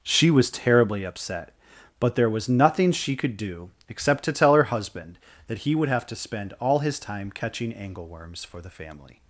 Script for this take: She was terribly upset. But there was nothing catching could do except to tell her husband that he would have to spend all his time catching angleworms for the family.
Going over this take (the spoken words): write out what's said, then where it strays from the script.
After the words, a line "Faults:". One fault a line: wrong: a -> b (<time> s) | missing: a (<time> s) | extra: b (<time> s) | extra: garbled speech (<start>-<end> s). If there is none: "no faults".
She was terribly upset. But there was nothing she could do except to tell her husband that he would have to spend all his time catching angleworms for the family.
Faults:
wrong: catching -> she (2.9 s)